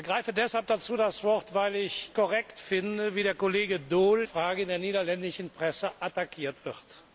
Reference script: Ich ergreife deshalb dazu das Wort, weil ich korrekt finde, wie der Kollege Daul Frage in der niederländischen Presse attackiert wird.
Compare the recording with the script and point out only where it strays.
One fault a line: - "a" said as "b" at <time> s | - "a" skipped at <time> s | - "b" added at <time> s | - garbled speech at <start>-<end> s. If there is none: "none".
none